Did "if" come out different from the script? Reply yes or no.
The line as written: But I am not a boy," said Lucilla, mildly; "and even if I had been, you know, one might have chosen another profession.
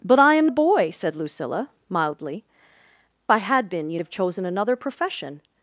yes